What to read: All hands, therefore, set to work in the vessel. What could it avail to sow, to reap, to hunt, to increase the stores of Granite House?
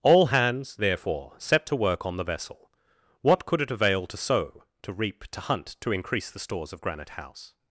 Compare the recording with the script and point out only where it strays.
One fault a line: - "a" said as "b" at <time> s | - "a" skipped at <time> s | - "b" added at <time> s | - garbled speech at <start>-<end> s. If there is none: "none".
- "in" said as "on" at 2.0 s